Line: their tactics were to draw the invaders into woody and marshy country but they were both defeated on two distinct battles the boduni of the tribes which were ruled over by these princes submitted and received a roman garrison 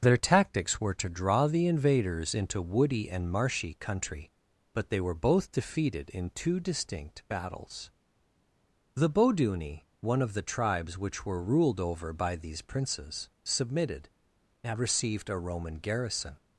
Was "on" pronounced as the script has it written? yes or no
no